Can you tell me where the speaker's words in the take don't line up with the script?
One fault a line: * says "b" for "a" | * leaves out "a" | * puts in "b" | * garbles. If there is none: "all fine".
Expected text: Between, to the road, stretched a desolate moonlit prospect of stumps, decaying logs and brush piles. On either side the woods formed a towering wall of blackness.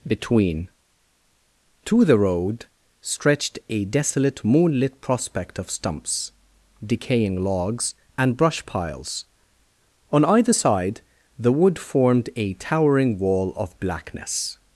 * says "wood" for "woods"